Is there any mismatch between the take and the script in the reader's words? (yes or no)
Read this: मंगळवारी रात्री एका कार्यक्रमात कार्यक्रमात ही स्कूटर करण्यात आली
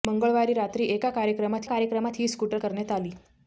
no